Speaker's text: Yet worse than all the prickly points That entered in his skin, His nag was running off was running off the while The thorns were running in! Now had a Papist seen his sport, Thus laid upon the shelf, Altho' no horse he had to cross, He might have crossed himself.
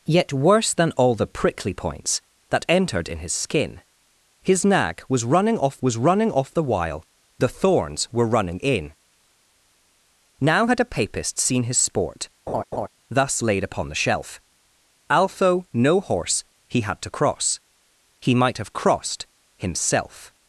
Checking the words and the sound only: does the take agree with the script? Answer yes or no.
no